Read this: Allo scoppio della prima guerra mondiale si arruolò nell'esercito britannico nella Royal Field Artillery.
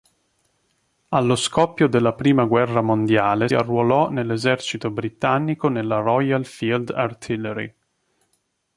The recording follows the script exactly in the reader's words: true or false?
false